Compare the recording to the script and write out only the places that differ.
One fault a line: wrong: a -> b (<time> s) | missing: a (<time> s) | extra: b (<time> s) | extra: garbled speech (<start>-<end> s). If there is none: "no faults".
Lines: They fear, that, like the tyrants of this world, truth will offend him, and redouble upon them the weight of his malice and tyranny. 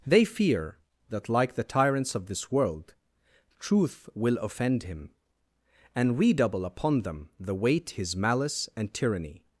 missing: of (7.9 s)